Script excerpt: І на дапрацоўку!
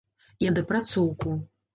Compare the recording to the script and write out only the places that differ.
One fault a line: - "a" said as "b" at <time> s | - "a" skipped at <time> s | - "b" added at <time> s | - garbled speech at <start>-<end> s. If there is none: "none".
none